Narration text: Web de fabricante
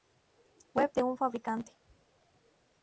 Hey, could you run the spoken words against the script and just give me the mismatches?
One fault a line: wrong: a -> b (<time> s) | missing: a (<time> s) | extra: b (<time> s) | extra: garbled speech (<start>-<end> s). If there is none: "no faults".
extra: un (1.0 s)